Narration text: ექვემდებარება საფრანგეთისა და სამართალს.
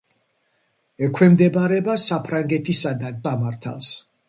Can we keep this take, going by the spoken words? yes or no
yes